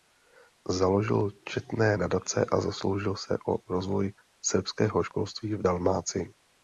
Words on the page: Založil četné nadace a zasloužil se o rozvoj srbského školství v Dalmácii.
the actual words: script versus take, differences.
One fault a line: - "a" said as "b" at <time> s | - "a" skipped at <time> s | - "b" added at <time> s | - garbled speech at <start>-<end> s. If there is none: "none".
none